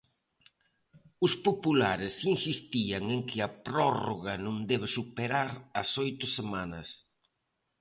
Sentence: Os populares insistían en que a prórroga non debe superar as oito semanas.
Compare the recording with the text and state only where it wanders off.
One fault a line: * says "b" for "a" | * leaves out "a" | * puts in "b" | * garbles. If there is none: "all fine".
all fine